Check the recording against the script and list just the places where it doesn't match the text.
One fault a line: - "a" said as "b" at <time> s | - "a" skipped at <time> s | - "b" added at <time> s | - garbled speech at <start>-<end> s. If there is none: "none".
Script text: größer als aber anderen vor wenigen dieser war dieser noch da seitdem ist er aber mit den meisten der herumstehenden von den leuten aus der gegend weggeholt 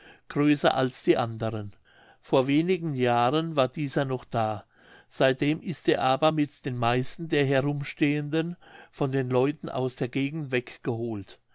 - "aber" said as "die" at 1.0 s
- "dieser" said as "jahren" at 3.0 s